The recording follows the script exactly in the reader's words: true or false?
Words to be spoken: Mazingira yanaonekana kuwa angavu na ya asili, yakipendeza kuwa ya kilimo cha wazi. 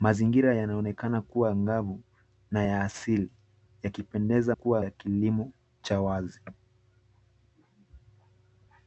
true